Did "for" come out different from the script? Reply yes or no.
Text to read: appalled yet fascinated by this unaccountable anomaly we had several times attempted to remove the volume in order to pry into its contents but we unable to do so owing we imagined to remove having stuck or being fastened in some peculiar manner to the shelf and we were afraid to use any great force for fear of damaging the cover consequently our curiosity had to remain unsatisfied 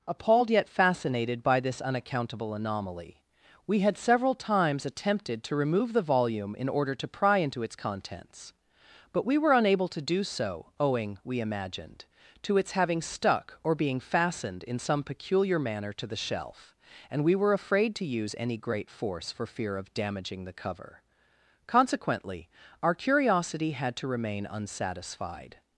no